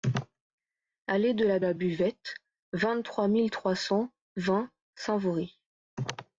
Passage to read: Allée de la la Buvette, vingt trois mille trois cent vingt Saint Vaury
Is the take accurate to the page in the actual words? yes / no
yes